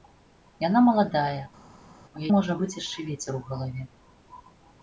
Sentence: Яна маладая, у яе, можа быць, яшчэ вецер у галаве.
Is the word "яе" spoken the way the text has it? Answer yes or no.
no